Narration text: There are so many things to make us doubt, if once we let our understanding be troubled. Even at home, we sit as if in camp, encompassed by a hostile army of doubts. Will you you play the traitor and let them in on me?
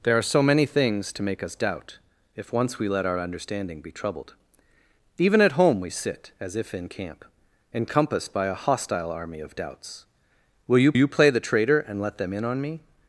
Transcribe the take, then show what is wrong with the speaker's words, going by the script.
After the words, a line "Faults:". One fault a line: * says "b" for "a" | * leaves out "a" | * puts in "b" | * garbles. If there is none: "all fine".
There are so many things to make us doubt, if once we let our understanding be troubled. Even at home, we sit as if in camp, encompassed by a hostile army of doubts. Will you you play the traitor and let them in on me?
Faults:
all fine